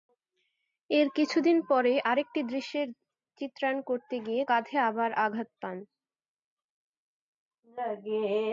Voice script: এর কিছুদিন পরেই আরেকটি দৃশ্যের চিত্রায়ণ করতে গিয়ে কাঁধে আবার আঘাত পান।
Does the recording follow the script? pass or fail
pass